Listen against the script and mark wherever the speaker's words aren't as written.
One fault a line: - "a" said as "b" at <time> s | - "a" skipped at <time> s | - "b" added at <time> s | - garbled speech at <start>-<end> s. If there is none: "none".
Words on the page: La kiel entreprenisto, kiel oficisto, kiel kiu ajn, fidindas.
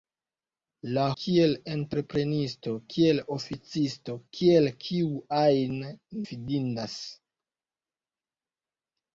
none